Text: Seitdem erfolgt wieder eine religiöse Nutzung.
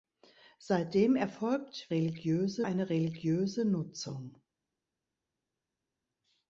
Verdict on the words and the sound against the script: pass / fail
fail